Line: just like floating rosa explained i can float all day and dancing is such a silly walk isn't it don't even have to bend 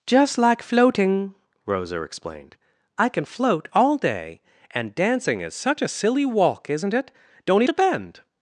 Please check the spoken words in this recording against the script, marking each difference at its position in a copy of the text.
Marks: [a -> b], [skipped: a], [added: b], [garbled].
just like floating rosa explained i can float all day and dancing is such a silly walk isn't it don't [skipped: even have] to bend